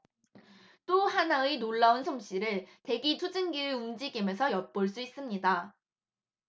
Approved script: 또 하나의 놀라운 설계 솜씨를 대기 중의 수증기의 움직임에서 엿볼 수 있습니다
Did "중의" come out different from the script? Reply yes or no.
yes